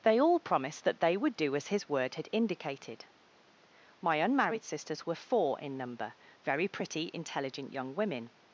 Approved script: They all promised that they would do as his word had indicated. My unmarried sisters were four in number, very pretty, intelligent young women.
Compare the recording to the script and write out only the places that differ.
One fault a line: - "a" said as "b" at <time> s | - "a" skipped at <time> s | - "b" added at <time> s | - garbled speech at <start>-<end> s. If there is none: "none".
none